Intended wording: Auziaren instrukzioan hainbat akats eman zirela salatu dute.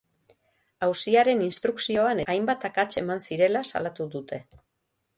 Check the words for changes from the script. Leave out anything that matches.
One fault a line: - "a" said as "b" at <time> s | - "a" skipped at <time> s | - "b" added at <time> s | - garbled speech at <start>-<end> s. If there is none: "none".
none